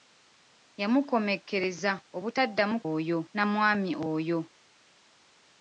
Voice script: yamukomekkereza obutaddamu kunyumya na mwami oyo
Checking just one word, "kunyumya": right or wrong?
wrong